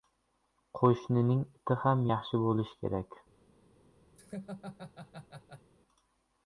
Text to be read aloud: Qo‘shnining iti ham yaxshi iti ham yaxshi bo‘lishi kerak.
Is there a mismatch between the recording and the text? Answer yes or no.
yes